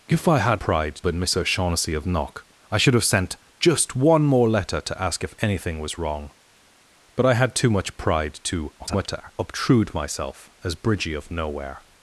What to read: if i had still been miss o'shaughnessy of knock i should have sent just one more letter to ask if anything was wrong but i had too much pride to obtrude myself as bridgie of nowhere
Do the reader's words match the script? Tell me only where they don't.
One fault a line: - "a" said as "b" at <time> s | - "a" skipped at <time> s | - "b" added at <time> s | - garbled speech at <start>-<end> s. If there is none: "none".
- "still" said as "pride" at 0.6 s
- garbled speech at 8.8-9.3 s